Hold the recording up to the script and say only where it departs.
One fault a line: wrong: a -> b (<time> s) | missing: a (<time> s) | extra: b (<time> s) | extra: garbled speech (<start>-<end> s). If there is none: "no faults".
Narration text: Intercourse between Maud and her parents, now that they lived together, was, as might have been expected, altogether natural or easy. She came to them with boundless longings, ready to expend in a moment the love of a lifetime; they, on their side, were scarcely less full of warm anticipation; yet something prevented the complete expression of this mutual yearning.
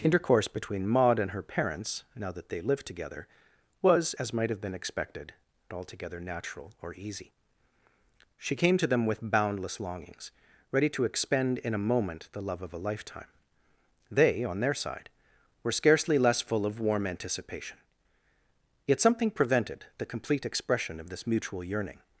no faults